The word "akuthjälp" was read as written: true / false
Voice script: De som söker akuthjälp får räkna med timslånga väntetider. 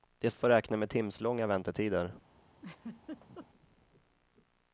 false